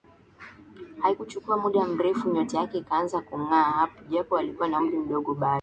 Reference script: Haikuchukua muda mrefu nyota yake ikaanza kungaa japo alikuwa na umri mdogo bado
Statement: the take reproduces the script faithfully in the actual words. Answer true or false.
true